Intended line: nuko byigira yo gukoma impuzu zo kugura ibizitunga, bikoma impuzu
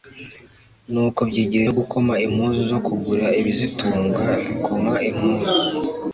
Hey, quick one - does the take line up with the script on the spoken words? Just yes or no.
yes